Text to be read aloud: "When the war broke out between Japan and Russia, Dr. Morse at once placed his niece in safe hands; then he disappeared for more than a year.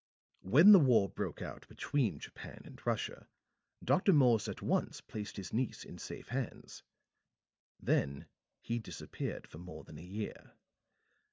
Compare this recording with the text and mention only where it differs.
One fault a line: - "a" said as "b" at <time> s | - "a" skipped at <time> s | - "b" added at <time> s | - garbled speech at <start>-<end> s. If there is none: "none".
none